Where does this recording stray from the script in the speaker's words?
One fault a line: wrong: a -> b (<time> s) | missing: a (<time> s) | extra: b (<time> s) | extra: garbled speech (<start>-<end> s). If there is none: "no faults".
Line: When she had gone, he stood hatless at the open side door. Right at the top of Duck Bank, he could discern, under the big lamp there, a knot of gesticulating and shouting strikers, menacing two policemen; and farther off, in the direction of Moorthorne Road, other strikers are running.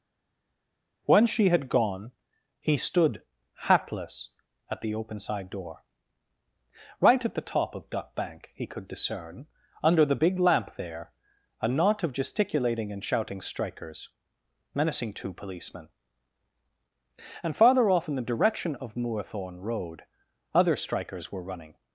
wrong: are -> were (21.3 s)